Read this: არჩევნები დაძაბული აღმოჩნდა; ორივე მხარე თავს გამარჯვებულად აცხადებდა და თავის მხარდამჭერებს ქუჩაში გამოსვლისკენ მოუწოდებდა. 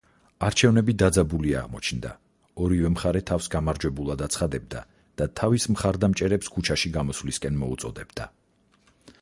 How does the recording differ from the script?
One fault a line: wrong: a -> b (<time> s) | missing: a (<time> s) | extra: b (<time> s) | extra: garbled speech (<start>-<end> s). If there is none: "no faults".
no faults